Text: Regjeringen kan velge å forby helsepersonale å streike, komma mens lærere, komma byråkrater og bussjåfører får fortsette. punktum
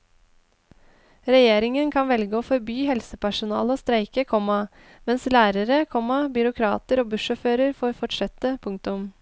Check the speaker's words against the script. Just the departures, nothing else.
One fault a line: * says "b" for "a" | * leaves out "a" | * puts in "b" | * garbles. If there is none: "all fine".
all fine